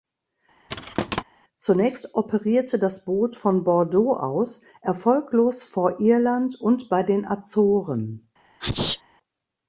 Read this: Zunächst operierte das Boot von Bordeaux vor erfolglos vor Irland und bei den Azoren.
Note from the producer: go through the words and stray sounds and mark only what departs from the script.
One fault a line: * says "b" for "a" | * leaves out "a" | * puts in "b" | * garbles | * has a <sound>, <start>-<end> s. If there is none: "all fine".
* has a thud, 0.7-1.2 s
* says "aus" for "vor"
* has a sneeze, 8.6-9.0 s